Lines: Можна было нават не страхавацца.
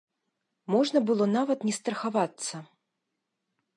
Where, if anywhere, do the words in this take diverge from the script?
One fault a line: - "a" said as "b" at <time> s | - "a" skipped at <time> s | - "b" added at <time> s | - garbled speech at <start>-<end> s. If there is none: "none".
none